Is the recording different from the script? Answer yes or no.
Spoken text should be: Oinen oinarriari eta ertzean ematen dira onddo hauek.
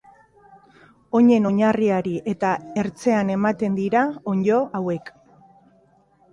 no